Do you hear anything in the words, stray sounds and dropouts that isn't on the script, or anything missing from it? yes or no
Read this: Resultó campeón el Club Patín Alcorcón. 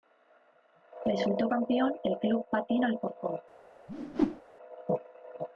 yes